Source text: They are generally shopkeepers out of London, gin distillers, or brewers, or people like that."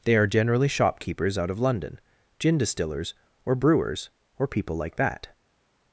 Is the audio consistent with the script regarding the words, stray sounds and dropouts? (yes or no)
yes